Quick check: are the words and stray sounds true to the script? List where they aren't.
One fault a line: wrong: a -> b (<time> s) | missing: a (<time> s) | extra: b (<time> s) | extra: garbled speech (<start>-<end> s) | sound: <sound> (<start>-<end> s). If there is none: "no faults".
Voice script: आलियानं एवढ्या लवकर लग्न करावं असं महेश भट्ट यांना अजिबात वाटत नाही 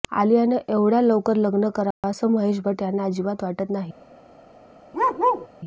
sound: dropout (1.9-2.0 s)
sound: bark (4.9-5.5 s)